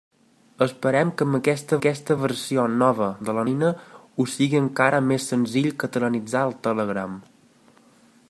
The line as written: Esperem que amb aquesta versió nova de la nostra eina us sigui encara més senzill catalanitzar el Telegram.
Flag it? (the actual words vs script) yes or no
yes